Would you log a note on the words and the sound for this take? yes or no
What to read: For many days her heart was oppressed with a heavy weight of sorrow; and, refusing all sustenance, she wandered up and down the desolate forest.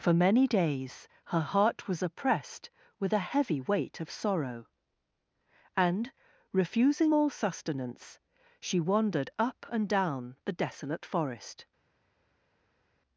no